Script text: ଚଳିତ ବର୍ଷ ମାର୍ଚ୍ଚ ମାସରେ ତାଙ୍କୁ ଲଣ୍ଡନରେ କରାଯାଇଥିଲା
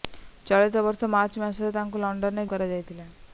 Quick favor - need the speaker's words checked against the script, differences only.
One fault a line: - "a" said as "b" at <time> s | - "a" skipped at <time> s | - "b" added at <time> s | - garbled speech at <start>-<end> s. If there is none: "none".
none